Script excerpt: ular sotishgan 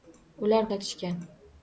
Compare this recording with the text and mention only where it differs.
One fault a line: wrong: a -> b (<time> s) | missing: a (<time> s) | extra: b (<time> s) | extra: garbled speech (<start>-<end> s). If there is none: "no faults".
no faults